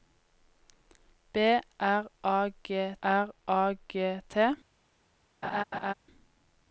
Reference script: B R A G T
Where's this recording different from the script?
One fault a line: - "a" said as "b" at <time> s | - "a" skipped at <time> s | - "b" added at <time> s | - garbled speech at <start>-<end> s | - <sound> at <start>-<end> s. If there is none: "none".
- "R A G" added at 3.0 s
- laugh at 5.4-5.9 s